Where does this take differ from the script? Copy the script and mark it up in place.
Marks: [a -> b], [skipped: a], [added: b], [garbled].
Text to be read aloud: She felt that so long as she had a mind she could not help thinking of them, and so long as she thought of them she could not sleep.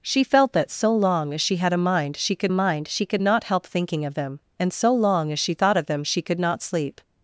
She felt that so long as she had a mind she could [added: mind she could] not help thinking of them, and so long as she thought of them she could not sleep.